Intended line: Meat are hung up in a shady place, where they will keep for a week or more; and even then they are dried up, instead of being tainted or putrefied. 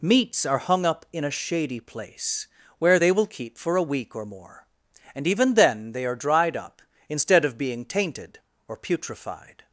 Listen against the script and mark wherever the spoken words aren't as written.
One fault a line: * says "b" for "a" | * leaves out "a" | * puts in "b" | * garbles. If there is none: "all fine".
* says "Meats" for "Meat"